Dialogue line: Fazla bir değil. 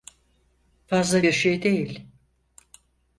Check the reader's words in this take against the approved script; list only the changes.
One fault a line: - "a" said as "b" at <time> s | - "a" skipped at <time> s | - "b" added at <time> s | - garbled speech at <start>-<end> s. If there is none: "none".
- "şey" added at 1.3 s